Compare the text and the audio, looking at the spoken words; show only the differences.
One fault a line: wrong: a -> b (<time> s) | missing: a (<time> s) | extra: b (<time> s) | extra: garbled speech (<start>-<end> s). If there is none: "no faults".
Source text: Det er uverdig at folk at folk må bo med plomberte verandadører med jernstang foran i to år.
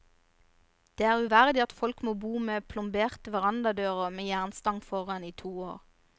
missing: at folk (2.0 s)